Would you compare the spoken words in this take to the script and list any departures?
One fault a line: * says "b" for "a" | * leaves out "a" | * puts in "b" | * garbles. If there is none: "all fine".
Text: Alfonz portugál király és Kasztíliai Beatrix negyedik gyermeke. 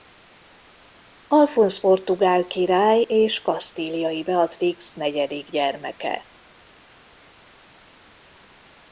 all fine